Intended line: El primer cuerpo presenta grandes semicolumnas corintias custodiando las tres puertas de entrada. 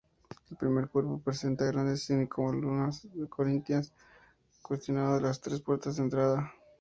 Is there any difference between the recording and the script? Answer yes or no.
no